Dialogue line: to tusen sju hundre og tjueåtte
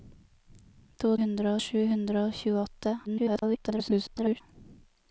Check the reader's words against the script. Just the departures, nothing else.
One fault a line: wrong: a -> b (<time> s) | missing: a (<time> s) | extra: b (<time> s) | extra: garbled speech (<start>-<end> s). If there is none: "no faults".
wrong: tusen -> hundre (1.2 s)
extra: garbled speech (3.0-4.4 s)